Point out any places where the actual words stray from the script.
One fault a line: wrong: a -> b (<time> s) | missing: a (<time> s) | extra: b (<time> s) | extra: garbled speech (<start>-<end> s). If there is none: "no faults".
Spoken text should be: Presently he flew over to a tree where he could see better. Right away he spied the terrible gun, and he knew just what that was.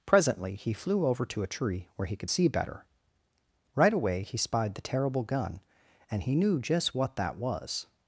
no faults